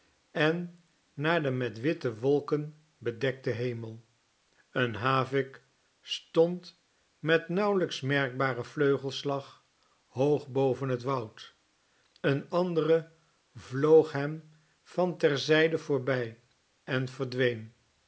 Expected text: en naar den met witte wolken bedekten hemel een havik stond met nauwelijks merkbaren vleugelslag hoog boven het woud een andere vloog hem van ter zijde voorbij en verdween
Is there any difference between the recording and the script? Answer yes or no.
no